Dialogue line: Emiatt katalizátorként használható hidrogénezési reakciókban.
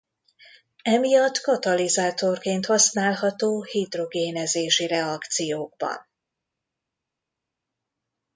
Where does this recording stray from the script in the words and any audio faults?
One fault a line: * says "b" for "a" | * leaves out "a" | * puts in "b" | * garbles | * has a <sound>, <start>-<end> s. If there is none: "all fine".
all fine